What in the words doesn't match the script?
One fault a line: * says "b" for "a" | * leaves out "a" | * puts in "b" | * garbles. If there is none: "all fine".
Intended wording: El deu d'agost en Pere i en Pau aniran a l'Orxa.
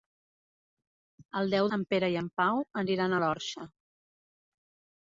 * leaves out "d'agost"